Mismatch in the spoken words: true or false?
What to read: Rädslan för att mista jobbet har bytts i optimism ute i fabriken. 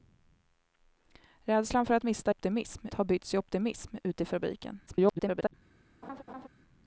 true